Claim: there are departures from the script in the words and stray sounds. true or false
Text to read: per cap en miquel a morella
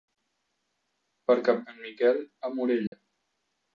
true